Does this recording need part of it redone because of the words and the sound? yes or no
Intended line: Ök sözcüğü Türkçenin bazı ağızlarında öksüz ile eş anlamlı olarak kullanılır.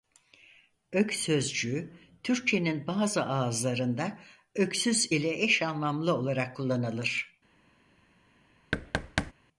yes